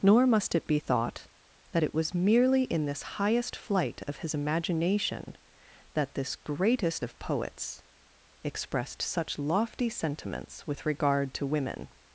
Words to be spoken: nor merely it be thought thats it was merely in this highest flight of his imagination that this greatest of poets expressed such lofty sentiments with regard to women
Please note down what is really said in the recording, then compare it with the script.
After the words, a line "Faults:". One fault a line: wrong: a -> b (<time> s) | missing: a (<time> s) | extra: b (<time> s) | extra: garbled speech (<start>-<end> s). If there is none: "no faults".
nor must it be thought that it was merely in this highest flight of his imagination that this greatest of poets expressed such lofty sentiments with regard to women
Faults:
wrong: merely -> must (0.2 s)
wrong: thats -> that (1.7 s)